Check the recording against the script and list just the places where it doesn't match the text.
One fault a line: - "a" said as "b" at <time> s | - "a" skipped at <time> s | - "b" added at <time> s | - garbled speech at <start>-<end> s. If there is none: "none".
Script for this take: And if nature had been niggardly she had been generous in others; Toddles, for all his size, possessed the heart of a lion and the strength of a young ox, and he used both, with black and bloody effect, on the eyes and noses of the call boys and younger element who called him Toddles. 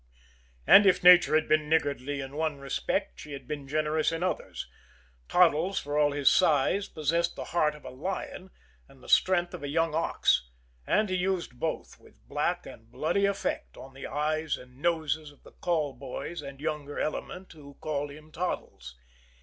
- "in one respect" added at 2.2 s